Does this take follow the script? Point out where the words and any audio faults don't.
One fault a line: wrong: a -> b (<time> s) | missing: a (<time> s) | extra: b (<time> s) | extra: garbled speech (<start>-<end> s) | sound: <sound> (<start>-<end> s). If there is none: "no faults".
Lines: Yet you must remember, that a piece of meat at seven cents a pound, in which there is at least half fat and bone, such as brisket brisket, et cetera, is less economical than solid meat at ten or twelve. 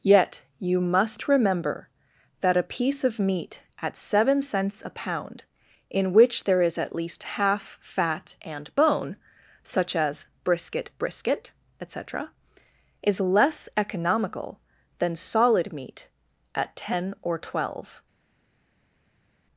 no faults